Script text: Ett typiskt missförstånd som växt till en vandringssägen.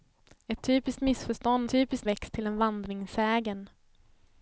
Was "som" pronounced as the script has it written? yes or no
no